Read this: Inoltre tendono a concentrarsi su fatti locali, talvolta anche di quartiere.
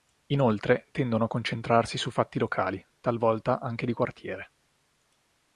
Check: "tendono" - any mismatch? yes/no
no